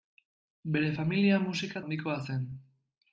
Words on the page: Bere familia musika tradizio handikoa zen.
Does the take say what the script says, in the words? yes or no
no